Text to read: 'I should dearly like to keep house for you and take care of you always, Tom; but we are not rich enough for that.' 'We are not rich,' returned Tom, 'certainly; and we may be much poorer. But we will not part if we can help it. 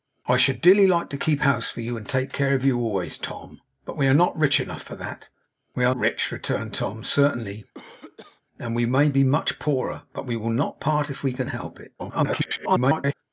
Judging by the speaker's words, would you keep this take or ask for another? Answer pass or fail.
fail